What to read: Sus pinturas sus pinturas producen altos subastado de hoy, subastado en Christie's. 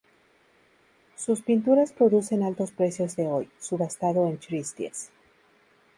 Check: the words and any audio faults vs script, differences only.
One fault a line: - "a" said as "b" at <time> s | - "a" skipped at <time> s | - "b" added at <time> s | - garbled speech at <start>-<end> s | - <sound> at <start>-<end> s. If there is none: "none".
- "sus pinturas" skipped at 1.9 s
- "subastado" said as "precios" at 2.7 s